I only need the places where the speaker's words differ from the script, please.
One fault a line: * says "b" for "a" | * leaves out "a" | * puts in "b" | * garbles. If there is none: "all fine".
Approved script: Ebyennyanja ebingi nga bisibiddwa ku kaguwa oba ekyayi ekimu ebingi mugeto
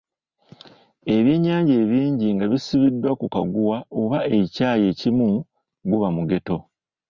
* says "guba" for "ebingi"